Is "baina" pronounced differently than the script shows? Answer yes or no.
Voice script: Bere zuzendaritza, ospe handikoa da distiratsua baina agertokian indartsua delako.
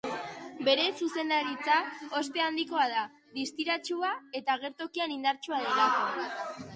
yes